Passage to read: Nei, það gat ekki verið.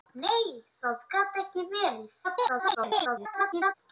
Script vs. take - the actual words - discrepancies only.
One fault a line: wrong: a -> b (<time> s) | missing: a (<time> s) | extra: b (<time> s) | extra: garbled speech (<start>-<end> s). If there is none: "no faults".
extra: garbled speech (2.2-3.7 s)